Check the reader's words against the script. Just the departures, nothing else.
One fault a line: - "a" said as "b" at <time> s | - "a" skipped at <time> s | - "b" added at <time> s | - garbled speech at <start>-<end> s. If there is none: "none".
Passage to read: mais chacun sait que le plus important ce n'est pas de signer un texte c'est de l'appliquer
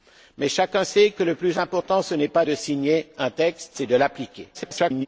- garbled speech at 4.5-5.1 s